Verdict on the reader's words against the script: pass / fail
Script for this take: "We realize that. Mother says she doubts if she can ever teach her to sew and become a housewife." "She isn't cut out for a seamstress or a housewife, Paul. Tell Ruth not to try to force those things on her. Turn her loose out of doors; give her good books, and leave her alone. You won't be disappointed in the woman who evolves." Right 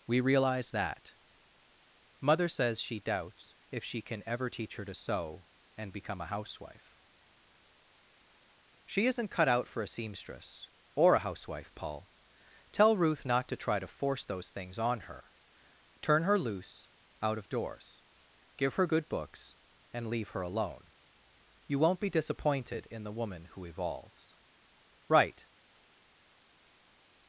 pass